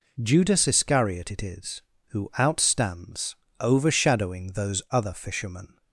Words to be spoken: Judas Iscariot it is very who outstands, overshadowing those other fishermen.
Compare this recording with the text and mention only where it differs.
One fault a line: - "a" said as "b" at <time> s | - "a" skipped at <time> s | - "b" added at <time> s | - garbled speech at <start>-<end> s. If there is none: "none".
- "very" skipped at 1.8 s